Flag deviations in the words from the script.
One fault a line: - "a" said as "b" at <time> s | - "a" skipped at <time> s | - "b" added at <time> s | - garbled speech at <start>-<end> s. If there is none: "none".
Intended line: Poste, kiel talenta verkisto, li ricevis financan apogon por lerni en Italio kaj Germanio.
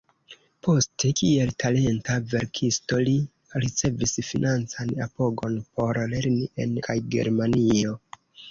- "Italio" skipped at 6.8 s